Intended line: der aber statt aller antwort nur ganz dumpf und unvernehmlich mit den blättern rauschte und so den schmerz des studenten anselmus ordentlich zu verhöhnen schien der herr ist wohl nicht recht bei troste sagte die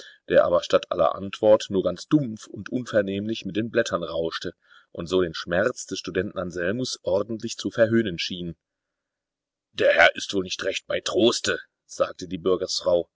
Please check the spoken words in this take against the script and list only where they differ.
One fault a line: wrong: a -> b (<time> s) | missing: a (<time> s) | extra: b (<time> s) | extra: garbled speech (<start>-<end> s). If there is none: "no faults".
no faults